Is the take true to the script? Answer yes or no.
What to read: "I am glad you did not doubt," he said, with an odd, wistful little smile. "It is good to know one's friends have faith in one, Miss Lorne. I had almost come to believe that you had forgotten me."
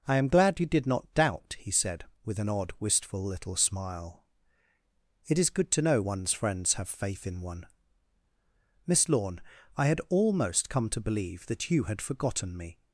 yes